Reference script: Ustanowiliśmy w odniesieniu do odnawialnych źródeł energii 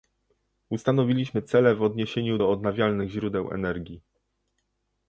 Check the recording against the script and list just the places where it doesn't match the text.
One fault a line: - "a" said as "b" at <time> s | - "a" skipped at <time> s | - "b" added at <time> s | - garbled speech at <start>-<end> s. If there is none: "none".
- "cele" added at 1.4 s